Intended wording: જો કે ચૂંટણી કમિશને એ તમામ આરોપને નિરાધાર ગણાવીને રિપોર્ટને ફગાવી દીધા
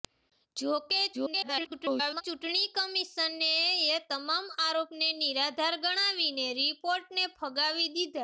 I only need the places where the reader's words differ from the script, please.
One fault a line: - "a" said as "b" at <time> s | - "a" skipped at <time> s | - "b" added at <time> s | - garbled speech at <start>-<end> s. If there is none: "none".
- garbled speech at 1.1-2.2 s